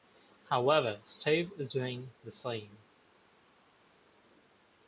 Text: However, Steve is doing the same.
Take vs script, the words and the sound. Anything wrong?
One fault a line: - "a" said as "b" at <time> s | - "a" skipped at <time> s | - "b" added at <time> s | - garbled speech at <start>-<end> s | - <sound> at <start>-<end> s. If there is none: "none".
none